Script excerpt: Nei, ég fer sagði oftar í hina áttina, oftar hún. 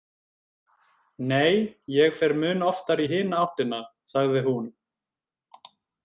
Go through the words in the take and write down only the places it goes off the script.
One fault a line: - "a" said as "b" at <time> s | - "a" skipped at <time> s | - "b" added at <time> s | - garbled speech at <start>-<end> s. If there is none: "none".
- "sagði" said as "mun" at 2.4 s
- "oftar" said as "sagði" at 4.1 s